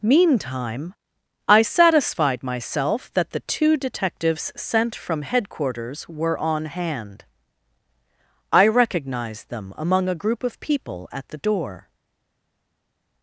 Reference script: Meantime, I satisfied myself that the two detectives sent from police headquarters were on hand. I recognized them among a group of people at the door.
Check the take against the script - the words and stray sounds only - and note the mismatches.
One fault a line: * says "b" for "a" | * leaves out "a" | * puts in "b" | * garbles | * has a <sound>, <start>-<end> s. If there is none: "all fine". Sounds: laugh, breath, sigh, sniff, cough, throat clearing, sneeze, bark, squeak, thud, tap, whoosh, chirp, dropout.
* leaves out "police"